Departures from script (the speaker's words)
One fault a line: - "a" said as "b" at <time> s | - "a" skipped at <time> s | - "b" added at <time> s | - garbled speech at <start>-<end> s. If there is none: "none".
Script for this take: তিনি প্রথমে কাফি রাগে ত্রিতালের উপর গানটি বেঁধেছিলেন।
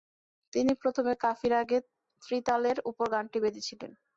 none